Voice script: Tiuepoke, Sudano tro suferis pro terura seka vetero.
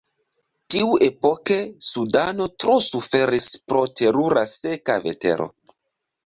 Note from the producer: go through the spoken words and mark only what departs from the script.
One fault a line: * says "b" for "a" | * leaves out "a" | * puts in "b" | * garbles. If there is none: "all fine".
all fine